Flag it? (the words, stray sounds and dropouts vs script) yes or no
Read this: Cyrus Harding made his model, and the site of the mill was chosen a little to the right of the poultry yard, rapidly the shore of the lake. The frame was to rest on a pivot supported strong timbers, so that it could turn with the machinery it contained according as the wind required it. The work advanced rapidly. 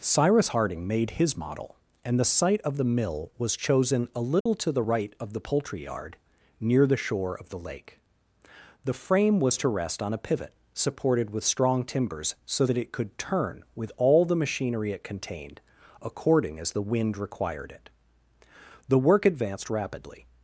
yes